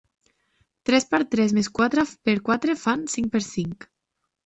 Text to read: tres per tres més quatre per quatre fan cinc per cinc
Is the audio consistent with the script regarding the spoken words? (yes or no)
yes